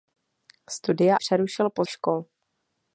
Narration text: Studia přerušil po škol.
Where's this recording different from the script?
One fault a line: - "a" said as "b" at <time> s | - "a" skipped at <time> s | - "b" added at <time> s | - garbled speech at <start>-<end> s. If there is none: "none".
none